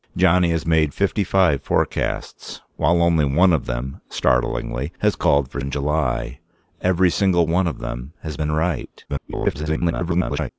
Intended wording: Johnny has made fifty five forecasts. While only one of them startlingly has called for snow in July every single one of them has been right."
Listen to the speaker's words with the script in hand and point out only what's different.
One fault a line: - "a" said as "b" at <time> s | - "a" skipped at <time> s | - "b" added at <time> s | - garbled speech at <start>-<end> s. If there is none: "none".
- "snow" skipped at 5.6 s
- garbled speech at 9.1-10.5 s